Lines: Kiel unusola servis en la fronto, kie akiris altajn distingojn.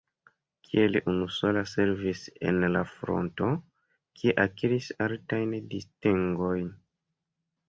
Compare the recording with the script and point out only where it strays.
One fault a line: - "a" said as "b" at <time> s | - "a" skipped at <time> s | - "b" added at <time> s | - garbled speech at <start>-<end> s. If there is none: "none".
none